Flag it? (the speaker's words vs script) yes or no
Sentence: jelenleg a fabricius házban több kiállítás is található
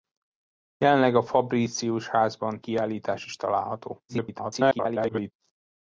yes